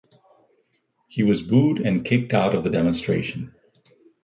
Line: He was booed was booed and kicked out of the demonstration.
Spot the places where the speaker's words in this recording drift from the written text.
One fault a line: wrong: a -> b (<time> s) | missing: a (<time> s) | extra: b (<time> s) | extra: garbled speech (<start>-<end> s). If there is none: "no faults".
missing: was booed (1.9 s)